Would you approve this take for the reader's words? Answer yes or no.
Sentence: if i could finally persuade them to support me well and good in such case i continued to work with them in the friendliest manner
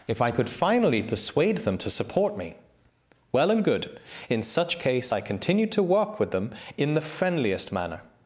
yes